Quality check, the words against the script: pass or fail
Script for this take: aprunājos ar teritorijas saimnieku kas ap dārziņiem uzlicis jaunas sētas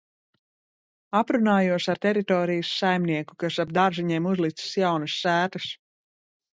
pass